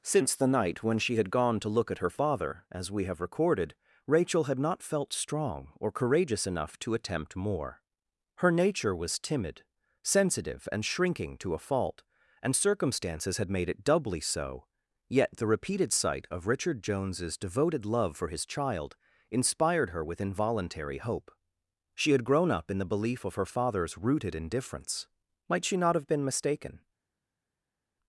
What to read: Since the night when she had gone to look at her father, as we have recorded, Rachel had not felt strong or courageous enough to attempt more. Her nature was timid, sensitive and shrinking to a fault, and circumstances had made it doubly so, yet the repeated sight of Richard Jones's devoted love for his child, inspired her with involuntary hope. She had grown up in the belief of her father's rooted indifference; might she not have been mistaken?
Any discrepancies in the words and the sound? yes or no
no